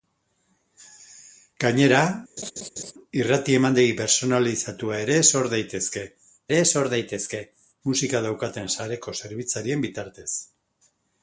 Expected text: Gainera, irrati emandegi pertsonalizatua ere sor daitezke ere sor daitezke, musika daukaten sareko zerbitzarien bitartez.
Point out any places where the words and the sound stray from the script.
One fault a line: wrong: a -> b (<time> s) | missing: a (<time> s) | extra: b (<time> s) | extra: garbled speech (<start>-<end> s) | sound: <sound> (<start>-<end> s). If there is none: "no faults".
sound: laugh (2.4-2.9 s)